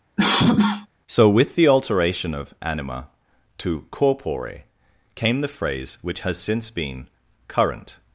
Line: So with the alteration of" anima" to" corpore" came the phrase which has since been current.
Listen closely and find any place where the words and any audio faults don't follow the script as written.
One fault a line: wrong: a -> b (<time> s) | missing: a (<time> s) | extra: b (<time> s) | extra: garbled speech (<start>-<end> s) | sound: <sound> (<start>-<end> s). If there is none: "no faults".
sound: cough (0.2-0.9 s)